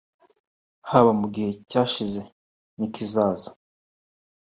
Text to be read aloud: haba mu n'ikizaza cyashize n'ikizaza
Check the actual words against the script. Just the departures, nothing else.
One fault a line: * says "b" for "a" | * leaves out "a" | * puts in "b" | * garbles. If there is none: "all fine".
* says "gihe" for "n'ikizaza"